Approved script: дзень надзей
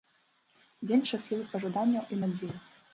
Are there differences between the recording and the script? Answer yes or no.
yes